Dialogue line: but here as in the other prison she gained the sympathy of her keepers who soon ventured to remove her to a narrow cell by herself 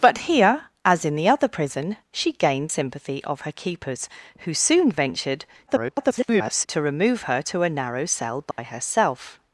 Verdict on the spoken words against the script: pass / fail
fail